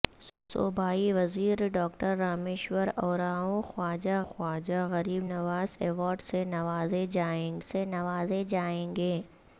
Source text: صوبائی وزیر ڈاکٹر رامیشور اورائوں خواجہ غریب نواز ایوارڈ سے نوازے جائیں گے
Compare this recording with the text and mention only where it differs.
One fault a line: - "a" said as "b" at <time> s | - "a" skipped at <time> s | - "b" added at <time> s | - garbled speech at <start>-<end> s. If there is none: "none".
- "خواجہ" added at 4.2 s
- "سے نوازے جائیں" added at 7.6 s